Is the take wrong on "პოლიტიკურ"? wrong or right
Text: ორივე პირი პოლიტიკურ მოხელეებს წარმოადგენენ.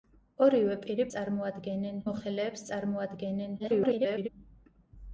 wrong